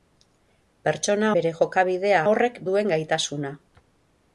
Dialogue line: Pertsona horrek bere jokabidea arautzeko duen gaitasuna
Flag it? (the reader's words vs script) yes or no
yes